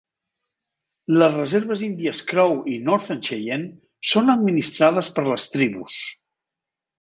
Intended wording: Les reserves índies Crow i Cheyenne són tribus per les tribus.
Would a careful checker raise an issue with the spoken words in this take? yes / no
yes